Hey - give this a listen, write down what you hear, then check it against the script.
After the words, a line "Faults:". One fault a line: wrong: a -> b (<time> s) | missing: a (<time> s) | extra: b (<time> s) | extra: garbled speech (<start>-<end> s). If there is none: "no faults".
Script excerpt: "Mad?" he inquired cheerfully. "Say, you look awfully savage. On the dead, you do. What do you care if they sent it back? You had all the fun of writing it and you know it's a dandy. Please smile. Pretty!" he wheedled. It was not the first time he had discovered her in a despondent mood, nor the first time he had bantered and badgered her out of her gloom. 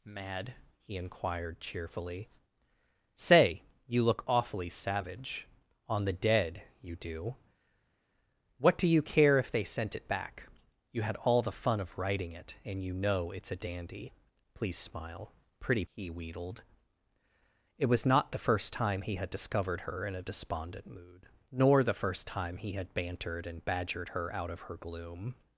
"Mad?" he inquired cheerfully. "Say, you look awfully savage. On the dead, you do. What do you care if they sent it back? You had all the fun of writing it and you know it's a dandy. Please smile. Pretty!" he wheedled. It was not the first time he had discovered her in a despondent mood, nor the first time he had bantered and badgered her out of her gloom.
Faults:
no faults